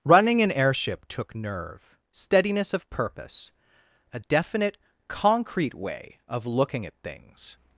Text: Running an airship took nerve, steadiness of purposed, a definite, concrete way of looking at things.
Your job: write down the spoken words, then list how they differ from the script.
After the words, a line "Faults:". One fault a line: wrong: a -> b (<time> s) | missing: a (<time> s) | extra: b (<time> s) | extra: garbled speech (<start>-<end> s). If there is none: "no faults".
Running an airship took nerve, steadiness of purpose, a definite, concrete way of looking at things.
Faults:
wrong: purposed -> purpose (2.9 s)